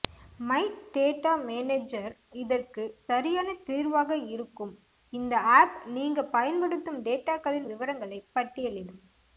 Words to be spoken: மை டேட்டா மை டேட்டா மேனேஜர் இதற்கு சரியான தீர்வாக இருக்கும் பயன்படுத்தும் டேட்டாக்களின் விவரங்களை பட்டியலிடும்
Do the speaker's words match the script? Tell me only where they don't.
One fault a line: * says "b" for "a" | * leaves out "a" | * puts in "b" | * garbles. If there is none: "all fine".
* leaves out "மை டேட்டா"
* puts in "இந்த ஆப் நீங்க"